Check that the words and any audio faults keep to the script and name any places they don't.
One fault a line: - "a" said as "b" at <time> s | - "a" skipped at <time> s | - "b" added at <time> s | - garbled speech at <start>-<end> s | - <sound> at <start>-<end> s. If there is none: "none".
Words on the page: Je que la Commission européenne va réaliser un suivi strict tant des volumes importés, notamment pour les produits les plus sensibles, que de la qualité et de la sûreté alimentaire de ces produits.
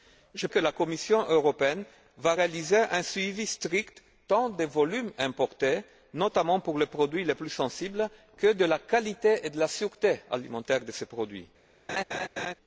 - laugh at 11.9-12.5 s